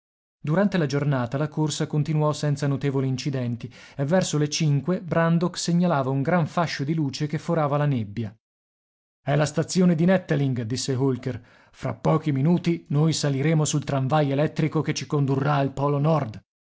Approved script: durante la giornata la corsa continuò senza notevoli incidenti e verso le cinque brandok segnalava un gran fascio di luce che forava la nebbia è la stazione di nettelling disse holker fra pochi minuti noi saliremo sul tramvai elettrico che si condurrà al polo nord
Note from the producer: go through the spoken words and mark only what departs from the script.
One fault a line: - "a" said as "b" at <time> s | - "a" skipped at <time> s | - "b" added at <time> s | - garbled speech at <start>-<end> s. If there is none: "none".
- "si" said as "ci" at 14.9 s